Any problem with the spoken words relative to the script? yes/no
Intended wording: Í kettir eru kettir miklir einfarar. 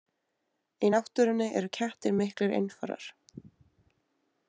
yes